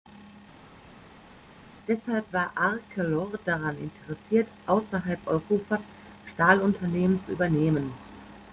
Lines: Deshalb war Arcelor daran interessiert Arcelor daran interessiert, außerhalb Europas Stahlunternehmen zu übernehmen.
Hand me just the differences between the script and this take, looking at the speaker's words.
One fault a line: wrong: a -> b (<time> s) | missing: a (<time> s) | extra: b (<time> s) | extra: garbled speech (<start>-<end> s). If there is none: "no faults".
missing: Arcelor daran interessiert (4.5 s)